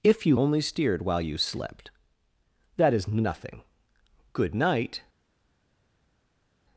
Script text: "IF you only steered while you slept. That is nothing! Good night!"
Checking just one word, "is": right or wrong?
right